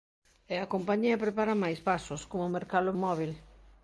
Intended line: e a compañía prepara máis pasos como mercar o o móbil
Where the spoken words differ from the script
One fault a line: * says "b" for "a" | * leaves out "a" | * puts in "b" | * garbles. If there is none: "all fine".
all fine